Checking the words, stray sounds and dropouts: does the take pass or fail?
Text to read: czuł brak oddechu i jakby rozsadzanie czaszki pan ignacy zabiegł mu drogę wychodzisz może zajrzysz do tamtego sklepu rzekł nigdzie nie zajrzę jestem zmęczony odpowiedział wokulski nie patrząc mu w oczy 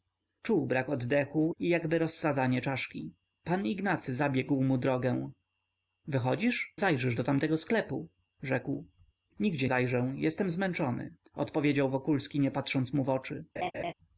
fail